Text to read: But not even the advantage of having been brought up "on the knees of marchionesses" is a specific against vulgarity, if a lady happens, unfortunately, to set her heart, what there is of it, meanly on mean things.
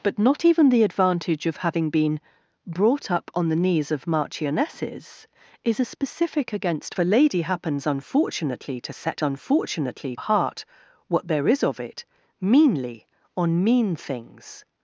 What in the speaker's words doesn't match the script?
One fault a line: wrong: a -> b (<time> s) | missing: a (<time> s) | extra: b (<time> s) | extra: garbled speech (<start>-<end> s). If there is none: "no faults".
missing: vulgarity if (7.0 s)
wrong: her -> unfortunately (9.2 s)